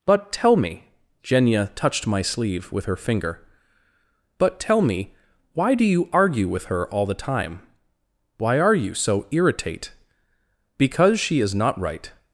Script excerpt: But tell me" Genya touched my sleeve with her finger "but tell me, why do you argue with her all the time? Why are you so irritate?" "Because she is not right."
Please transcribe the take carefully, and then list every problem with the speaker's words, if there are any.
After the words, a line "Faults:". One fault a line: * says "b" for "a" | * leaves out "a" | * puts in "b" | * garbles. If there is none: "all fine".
But tell me" Genya touched my sleeve with her finger "but tell me, why do you argue with her all the time? Why are you so irritate?" "Because she is not right."
Faults:
all fine